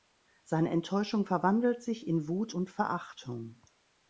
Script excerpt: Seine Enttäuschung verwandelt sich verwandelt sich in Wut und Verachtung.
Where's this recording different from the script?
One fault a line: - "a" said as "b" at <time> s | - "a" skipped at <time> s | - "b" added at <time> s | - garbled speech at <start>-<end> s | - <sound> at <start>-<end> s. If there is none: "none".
- "verwandelt sich" skipped at 2.1 s